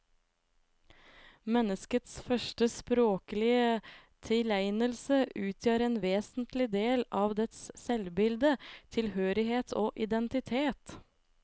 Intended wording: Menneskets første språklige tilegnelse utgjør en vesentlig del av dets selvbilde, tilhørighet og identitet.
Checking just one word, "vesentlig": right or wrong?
right